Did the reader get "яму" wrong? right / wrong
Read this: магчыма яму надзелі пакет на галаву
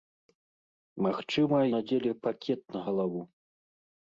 wrong